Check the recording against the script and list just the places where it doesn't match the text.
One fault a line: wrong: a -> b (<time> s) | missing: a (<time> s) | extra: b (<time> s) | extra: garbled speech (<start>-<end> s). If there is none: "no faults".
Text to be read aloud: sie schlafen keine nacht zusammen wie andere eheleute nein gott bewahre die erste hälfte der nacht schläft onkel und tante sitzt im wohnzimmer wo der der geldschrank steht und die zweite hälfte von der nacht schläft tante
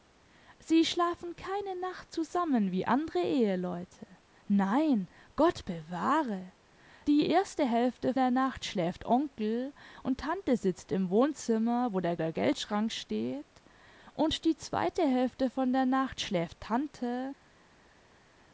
no faults